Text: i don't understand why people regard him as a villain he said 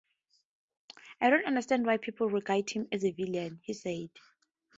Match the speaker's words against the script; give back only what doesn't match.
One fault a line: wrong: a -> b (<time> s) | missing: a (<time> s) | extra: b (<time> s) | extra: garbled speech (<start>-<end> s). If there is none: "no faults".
no faults